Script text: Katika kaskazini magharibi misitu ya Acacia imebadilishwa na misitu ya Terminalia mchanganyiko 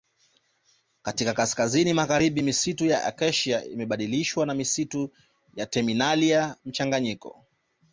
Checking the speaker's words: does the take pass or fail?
pass